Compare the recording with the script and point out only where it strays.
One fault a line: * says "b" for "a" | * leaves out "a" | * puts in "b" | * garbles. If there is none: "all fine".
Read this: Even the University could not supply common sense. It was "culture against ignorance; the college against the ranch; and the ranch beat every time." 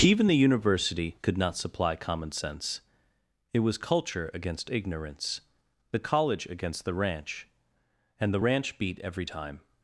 all fine